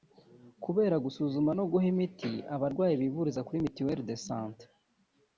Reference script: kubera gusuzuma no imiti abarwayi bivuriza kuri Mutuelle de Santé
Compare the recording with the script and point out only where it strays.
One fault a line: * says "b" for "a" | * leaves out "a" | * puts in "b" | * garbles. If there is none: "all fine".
* puts in "guha"